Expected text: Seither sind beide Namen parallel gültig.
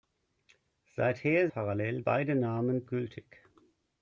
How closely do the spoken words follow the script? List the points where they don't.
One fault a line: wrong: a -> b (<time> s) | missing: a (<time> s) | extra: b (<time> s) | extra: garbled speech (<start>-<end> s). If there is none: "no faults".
wrong: sind -> parallel (1.5 s)
missing: parallel (2.8 s)